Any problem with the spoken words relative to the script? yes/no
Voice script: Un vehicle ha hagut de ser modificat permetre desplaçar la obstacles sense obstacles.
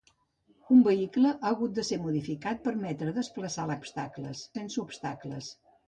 no